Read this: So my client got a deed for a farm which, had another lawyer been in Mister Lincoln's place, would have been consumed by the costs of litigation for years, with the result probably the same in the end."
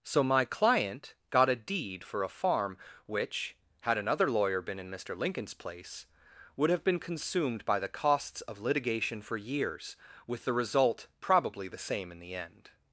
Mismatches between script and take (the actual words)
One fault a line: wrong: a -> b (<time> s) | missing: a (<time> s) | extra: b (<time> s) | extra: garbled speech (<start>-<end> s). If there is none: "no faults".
no faults